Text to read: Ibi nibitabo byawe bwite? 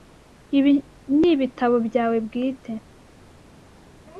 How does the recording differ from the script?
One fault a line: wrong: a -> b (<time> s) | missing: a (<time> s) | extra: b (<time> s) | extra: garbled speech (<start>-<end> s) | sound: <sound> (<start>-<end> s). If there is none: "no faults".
no faults